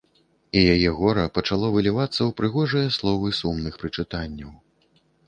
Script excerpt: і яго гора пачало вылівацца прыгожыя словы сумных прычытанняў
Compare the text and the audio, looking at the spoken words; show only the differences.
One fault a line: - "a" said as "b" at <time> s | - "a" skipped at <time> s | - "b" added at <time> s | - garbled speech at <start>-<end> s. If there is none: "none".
- "яго" said as "яе" at 0.8 s
- "ў" added at 2.1 s